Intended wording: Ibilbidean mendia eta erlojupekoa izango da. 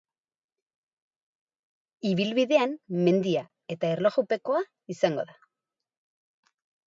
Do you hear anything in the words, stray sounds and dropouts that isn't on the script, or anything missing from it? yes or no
no